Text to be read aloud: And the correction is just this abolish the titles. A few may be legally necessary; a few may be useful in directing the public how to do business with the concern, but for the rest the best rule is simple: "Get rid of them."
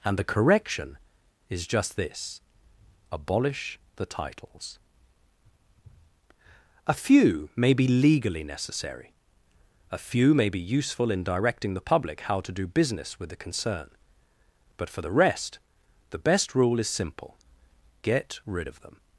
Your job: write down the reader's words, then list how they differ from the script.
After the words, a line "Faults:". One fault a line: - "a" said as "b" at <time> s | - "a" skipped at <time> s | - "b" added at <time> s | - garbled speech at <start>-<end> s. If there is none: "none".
And the correction is just this abolish the titles. A few may be legally necessary; a few may be useful in directing the public how to do business with the concern, but for the rest the best rule is simple: "Get rid of them."
Faults:
none